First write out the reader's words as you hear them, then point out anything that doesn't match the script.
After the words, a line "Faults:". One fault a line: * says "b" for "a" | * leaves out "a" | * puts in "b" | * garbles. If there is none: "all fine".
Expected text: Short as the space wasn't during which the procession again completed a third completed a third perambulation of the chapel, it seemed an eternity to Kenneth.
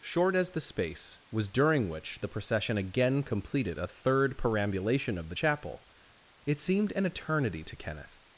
Short as the space was during which the procession again completed a third perambulation of the chapel, it seemed an eternity to Kenneth.
Faults:
* says "was" for "wasn't"
* leaves out "completed a third"